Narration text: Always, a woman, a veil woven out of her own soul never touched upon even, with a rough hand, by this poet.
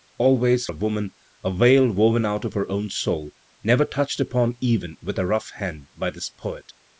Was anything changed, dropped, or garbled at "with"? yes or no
no